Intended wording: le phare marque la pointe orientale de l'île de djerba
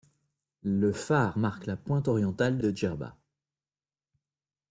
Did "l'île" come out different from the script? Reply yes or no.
yes